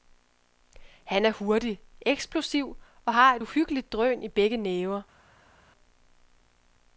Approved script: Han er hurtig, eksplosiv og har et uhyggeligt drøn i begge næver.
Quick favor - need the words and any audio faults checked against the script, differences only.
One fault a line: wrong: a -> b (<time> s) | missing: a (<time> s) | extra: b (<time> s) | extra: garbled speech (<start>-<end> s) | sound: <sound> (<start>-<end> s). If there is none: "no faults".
no faults